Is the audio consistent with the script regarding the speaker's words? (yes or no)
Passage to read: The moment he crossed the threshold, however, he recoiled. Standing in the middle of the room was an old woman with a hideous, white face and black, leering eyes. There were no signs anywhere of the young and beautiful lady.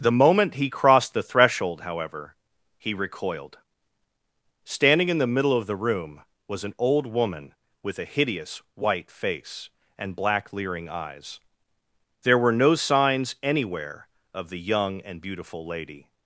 yes